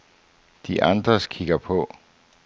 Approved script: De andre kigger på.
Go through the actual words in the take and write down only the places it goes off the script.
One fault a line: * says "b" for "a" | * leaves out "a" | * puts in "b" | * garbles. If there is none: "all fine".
all fine